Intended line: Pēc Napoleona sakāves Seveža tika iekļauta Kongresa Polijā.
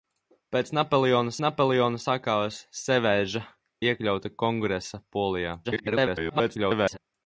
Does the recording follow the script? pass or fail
fail